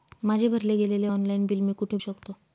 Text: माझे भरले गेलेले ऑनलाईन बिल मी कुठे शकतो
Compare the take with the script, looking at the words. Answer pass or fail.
pass